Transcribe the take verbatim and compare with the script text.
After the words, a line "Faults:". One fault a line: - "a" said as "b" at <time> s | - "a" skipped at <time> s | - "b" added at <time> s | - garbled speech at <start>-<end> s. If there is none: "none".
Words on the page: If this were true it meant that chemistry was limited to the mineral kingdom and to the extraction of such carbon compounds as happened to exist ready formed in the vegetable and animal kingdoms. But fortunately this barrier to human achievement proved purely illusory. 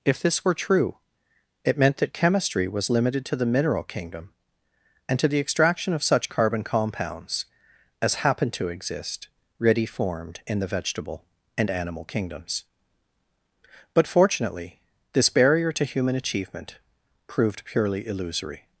If this were true it meant that chemistry was limited to the mineral kingdom and to the extraction of such carbon compounds as happened to exist ready formed in the vegetable and animal kingdoms. But fortunately this barrier to human achievement proved purely illusory.
Faults:
none